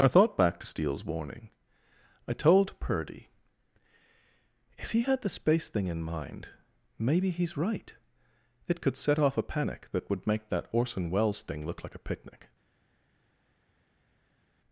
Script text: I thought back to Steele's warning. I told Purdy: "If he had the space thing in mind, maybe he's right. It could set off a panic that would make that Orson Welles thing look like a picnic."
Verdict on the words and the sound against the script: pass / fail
pass